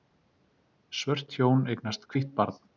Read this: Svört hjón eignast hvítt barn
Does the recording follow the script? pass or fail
pass